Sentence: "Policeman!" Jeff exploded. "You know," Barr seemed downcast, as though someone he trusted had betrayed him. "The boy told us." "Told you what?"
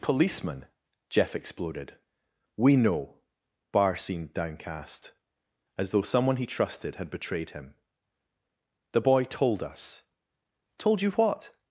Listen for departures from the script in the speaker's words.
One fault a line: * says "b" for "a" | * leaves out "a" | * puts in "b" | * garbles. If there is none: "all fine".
* says "We" for "You"